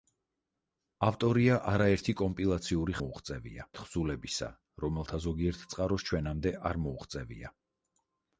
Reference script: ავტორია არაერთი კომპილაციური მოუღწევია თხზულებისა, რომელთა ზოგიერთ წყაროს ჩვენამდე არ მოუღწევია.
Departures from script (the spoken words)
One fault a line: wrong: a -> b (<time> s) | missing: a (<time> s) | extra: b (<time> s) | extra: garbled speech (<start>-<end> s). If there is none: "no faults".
no faults